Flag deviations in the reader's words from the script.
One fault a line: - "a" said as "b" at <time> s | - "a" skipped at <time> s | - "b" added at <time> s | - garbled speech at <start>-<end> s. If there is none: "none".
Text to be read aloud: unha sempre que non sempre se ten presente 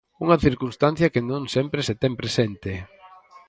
- "sempre" said as "circunstancia" at 0.5 s